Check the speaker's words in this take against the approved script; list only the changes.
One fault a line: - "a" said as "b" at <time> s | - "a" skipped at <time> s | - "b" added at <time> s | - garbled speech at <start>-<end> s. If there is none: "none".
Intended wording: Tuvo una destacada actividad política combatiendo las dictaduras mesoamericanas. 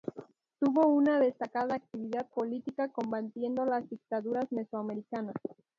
none